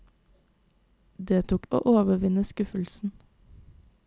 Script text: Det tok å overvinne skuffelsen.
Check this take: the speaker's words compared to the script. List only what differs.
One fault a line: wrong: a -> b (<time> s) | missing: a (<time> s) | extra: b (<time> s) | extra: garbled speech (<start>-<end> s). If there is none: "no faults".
no faults